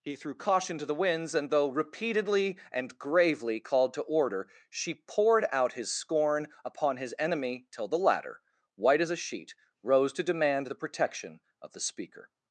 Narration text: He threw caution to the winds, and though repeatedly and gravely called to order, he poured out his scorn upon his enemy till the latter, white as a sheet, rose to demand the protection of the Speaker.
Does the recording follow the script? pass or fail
fail